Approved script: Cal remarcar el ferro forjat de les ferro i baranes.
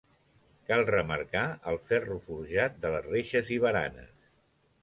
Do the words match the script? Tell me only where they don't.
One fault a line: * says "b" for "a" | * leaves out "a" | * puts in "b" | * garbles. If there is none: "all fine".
* says "reixes" for "ferro"